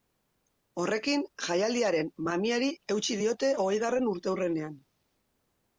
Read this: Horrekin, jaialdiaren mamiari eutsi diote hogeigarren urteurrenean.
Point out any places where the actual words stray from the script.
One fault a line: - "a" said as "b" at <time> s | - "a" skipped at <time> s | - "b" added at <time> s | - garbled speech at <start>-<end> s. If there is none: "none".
none